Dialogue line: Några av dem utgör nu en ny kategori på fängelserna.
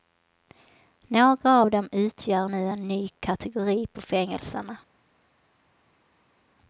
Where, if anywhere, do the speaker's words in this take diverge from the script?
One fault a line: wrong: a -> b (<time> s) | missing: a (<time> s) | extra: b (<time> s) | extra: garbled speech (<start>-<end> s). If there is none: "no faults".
no faults